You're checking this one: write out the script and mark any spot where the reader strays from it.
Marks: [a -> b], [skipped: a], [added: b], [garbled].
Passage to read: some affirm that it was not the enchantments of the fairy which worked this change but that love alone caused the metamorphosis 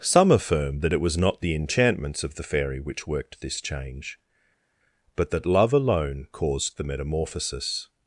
some affirm that it was not the enchantments of the fairy which worked this change but that love alone caused the metamorphosis